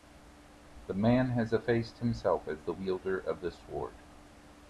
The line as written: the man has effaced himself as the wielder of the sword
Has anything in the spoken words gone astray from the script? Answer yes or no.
no